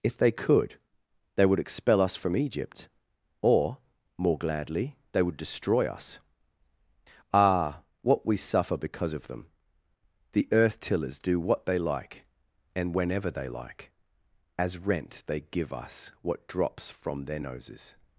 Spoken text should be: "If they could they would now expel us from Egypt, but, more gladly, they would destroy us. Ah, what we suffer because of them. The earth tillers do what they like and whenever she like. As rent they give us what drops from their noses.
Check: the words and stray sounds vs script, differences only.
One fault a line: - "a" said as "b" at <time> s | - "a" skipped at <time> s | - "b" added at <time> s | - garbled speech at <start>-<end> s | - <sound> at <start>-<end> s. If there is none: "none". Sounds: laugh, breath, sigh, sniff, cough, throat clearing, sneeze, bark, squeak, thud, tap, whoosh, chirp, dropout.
- "now" skipped at 1.6 s
- "but" said as "or" at 3.4 s
- "she" said as "they" at 13.3 s